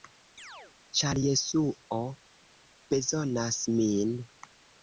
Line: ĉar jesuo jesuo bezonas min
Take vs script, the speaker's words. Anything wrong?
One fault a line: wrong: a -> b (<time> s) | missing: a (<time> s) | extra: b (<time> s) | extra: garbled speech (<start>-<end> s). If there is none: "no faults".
missing: jesuo (2.0 s)